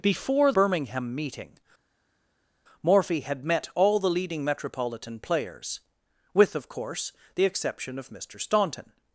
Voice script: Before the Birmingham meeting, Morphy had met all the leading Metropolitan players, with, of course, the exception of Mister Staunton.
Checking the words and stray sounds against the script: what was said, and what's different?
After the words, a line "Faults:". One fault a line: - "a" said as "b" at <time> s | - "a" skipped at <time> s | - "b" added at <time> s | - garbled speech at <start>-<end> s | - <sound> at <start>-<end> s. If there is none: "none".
Before Birmingham meeting, Morphy had met all the leading Metropolitan players, with, of course, the exception of Mister Staunton.
Faults:
- "the" skipped at 0.5 s